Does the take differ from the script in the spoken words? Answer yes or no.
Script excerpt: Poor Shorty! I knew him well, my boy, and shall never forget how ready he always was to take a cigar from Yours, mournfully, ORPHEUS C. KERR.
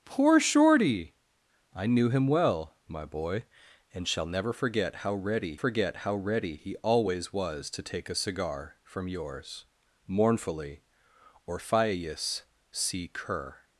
yes